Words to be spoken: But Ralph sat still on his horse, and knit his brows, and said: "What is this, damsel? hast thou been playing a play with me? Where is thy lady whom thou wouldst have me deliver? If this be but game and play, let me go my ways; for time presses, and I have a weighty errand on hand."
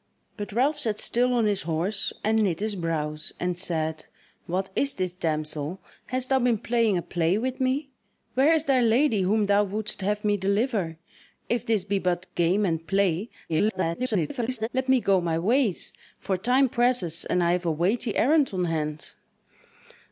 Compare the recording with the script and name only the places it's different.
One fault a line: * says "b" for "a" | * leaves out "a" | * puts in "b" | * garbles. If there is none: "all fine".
* garbles